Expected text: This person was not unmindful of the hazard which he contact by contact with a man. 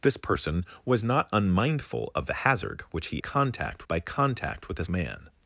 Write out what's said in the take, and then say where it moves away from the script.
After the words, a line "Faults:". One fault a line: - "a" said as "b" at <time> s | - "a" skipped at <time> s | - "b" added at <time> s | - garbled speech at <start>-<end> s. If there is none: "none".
This person was not unmindful of the hazard which he contact by contact with a man.
Faults:
none